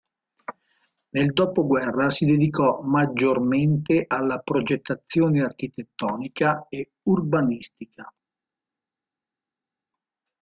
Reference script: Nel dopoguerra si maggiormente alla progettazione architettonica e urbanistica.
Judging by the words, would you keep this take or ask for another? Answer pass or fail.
fail